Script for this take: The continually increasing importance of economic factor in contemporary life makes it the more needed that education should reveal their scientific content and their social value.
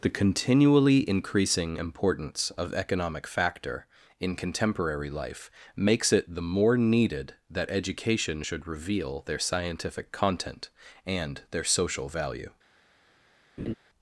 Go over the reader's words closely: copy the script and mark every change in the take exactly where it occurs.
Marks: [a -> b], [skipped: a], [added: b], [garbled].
The continually increasing importance of economic factor in contemporary life makes it the more needed that education should reveal their scientific content and their social value.